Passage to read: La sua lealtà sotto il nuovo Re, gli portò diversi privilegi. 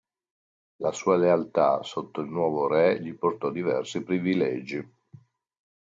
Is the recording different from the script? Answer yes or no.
no